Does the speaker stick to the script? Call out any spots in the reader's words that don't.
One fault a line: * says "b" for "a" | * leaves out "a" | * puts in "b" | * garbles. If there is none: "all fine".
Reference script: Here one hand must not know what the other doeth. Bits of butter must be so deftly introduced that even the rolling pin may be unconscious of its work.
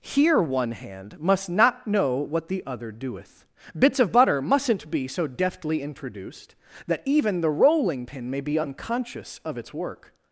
* says "mustn't" for "must"